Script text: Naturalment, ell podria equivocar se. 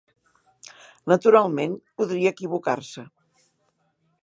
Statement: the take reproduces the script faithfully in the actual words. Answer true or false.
false